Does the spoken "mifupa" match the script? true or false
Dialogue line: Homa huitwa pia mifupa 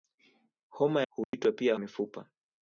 true